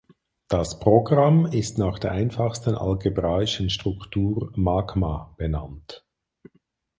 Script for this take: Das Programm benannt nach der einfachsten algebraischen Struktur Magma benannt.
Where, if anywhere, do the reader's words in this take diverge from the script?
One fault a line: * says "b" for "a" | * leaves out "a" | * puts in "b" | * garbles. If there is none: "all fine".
* says "ist" for "benannt"